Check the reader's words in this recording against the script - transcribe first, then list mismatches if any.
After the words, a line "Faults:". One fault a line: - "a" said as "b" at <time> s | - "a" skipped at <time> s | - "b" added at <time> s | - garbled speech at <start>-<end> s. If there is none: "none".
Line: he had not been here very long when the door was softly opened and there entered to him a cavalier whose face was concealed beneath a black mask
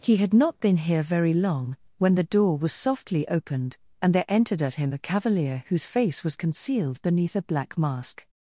he had not been here very long when the door was softly opened and there entered at him a cavalier whose face was concealed beneath a black mask
Faults:
- "to" said as "at" at 4.6 s